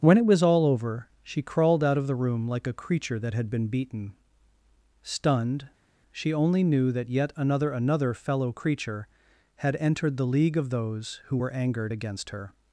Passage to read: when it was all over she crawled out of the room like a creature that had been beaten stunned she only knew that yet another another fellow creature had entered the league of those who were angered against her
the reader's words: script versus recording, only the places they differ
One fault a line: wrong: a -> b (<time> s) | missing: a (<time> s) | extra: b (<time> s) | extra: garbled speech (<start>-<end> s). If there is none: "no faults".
no faults